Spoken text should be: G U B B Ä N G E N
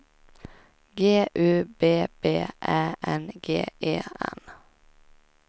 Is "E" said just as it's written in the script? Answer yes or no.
yes